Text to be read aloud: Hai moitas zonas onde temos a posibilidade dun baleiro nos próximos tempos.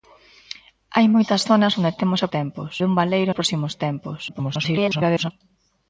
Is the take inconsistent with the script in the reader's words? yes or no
yes